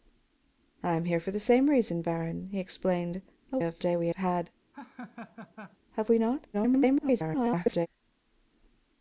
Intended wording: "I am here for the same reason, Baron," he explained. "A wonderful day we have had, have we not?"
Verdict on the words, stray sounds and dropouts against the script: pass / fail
fail